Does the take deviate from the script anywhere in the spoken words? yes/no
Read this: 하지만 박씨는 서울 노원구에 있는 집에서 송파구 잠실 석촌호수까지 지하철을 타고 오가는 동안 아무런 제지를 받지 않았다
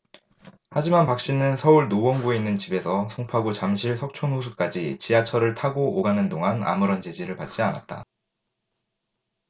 no